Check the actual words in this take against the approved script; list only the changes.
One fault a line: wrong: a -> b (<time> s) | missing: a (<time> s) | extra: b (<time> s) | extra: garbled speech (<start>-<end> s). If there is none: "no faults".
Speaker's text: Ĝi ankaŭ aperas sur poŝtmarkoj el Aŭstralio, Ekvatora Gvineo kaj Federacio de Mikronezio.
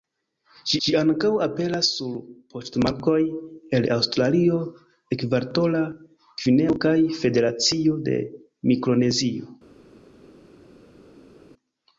extra: ĝi (0.8 s)